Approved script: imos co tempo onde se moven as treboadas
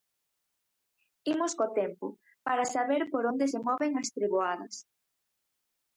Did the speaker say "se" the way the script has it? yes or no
yes